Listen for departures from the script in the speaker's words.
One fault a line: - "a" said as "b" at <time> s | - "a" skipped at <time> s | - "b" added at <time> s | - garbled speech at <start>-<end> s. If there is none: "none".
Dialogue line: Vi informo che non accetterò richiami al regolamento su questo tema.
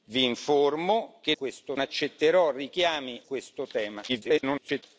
- "non" said as "questo" at 1.4 s
- "al regolamento su" skipped at 3.2 s
- garbled speech at 4.1-4.8 s